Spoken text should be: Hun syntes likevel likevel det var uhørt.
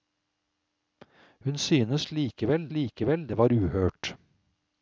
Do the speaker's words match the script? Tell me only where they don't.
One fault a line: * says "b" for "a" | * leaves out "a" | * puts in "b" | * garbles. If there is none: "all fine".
all fine